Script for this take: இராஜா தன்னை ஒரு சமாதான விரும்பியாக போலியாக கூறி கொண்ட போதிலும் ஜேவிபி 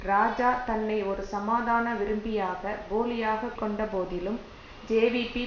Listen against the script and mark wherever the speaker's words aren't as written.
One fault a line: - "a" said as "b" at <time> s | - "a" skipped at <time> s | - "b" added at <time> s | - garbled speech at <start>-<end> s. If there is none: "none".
- "கூறி" skipped at 3.5 s